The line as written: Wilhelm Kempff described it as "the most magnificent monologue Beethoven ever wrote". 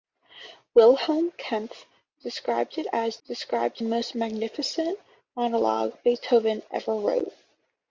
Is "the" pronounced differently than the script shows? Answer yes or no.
yes